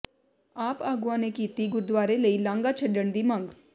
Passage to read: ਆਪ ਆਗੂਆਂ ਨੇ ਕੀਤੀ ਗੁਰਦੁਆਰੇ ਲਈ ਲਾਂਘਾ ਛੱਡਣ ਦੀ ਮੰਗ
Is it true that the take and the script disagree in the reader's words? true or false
false